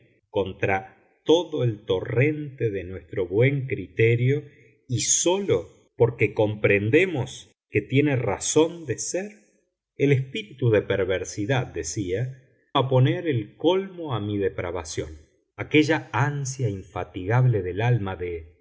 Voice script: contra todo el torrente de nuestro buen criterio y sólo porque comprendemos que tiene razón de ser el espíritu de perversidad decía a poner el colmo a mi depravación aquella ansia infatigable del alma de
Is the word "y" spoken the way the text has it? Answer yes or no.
yes